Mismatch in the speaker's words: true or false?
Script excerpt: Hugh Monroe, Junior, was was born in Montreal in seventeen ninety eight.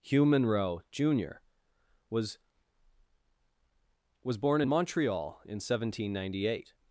false